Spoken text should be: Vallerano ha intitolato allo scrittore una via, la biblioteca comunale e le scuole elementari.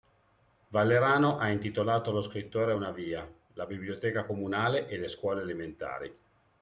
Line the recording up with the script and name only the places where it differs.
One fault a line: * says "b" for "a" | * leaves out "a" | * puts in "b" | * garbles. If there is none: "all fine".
all fine